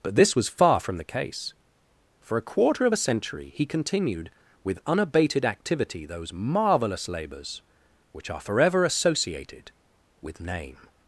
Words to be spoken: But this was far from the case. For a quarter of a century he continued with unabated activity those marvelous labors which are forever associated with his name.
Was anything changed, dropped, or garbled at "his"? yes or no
yes